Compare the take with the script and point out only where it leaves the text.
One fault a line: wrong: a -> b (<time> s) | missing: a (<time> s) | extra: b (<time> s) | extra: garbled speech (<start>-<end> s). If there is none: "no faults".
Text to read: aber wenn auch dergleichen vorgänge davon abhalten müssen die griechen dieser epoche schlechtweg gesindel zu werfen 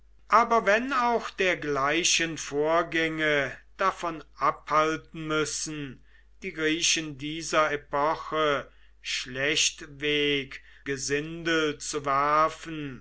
no faults